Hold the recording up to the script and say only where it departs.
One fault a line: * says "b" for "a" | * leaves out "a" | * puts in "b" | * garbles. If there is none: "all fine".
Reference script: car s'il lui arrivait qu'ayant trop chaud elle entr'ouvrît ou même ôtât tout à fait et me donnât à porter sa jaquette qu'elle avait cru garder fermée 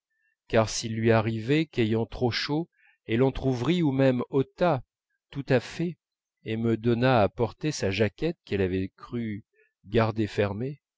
all fine